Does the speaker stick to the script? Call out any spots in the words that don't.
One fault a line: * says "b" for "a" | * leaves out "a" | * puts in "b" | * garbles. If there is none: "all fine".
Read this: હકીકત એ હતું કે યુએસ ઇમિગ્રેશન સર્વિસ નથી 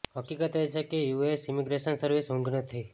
* says "છે" for "હતું"
* puts in "ઊંઘ"